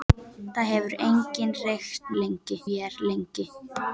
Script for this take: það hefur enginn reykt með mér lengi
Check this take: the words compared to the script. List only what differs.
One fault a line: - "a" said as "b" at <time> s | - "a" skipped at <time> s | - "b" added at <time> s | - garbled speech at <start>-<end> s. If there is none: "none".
- "með" said as "lengi" at 2.2 s